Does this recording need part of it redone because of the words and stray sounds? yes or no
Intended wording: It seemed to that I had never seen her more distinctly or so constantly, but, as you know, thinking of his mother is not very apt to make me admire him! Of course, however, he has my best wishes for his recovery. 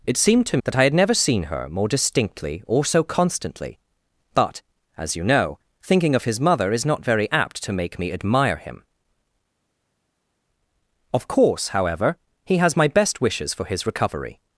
no